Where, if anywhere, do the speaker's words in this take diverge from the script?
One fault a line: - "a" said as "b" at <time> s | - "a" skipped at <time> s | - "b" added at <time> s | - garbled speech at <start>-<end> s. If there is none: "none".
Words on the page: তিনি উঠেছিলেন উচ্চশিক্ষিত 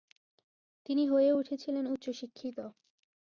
- "হয়ে" added at 1.1 s